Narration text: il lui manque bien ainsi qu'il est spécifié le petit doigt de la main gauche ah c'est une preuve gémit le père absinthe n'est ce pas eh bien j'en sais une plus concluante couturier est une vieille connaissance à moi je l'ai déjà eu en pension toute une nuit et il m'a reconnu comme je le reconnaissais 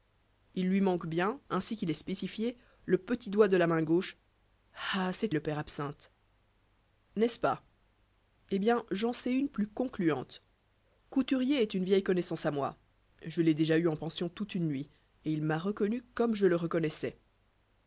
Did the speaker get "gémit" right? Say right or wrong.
wrong